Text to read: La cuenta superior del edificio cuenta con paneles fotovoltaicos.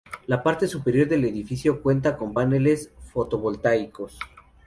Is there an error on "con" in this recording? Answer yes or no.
no